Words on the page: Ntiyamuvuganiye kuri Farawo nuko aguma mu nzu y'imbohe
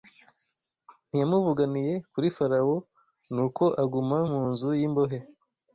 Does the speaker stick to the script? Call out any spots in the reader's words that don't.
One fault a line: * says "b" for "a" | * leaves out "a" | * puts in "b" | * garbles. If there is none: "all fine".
all fine